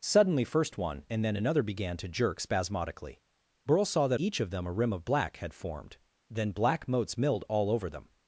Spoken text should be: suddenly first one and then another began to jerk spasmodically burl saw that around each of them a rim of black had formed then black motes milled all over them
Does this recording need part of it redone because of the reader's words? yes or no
yes